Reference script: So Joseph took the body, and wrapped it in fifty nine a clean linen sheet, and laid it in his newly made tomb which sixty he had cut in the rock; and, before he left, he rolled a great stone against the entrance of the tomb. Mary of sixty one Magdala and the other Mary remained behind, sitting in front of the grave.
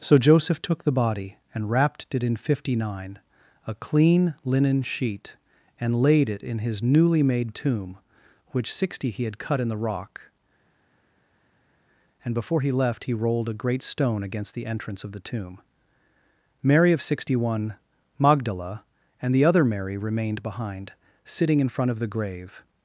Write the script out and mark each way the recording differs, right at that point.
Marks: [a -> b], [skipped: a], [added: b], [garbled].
So Joseph took the body, and wrapped it in fifty nine a clean linen sheet, and laid it in his newly made tomb which sixty he had cut in the rock; and, before he left, he rolled a great stone against the entrance of the tomb. Mary of sixty one Magdala and the other Mary remained behind, sitting in front of the grave.